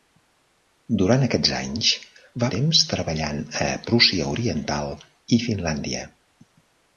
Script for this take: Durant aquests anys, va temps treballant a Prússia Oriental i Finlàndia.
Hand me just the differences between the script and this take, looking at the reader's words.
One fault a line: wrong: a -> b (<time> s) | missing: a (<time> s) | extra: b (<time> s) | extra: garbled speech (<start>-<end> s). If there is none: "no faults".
no faults